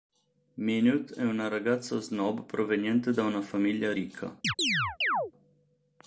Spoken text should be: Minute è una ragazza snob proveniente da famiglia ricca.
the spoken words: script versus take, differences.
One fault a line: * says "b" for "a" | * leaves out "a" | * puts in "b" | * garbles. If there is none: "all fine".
* puts in "una"